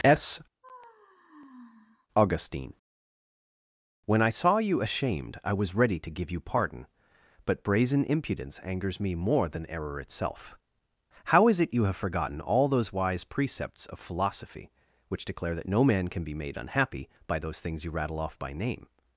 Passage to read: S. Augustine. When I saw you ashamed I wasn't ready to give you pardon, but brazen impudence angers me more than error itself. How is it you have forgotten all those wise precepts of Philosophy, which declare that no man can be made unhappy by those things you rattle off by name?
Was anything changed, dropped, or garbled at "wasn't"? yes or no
yes